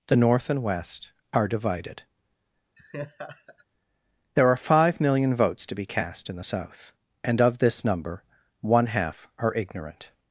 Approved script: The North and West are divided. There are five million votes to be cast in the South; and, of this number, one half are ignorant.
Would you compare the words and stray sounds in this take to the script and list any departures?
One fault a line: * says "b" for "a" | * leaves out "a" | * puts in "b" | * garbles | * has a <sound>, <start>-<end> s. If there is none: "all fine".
* has a laugh, 2.8-3.7 s